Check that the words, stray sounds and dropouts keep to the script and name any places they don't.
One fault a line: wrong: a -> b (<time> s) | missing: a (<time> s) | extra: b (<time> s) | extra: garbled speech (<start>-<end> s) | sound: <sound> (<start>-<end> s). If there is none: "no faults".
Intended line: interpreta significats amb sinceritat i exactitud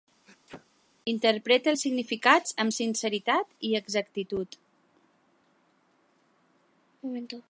sound: sneeze (0.3-0.7 s)
extra: els (1.7 s)